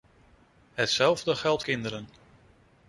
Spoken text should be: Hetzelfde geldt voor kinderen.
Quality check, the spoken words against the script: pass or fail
fail